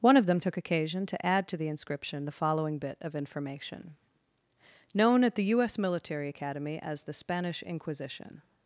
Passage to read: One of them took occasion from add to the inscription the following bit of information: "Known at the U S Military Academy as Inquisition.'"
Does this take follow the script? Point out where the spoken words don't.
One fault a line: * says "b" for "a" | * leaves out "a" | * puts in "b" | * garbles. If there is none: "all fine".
* says "to" for "from"
* puts in "the Spanish"